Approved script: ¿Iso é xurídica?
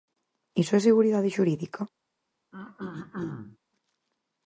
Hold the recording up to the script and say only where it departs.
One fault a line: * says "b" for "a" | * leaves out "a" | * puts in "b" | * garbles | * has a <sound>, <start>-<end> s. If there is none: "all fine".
* puts in "seguridade"
* has a throat clearing, 2.5-3.6 s